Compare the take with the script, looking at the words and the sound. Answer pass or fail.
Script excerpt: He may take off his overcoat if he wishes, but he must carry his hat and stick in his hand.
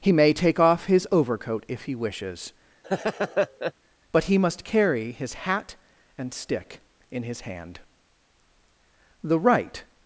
fail